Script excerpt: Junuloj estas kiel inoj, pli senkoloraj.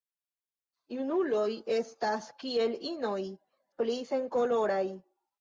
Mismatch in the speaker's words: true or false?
false